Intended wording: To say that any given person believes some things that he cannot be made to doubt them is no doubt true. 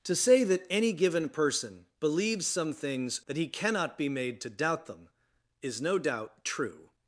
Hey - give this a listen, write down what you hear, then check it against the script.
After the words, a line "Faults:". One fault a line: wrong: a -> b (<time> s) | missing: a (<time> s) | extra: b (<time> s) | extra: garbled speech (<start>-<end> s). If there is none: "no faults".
To say that any given person believes some things that he cannot be made to doubt them is no doubt true.
Faults:
no faults